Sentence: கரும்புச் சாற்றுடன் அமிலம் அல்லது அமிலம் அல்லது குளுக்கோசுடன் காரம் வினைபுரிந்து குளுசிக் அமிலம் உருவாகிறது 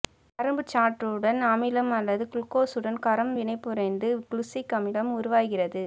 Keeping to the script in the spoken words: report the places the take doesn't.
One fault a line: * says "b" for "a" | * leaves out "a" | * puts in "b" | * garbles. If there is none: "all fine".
* leaves out "அமிலம் அல்லது"